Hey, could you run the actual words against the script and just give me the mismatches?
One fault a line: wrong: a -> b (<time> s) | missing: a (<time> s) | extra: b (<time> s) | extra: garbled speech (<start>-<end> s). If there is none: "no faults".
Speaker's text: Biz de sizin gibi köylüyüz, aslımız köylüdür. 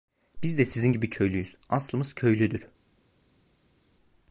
no faults